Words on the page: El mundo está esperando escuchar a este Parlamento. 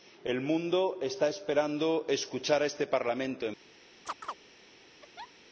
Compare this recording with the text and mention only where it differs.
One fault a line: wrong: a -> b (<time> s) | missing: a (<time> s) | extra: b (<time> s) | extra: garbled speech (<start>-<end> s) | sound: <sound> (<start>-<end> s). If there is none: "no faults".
sound: chirp (4.1-4.4 s)
sound: laugh (5.0-5.3 s)